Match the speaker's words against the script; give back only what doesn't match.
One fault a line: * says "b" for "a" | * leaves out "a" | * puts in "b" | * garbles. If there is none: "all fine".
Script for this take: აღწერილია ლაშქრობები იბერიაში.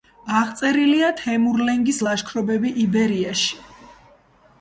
* puts in "თემურლენგის"